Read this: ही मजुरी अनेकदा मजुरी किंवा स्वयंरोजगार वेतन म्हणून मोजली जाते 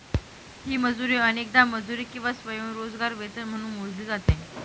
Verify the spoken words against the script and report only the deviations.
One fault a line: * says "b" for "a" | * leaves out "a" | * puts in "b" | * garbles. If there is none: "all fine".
all fine